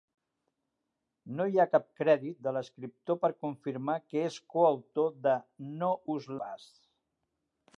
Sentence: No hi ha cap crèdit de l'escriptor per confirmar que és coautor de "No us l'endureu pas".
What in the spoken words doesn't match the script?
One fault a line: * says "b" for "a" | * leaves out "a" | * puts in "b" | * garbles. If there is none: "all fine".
* leaves out "l'endureu"